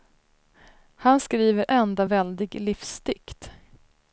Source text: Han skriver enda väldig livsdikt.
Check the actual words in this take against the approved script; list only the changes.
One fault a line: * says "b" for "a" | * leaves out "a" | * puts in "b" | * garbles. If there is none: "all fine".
all fine